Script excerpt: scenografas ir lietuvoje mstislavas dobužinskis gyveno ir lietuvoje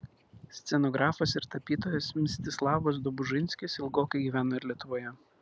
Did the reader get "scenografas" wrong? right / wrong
right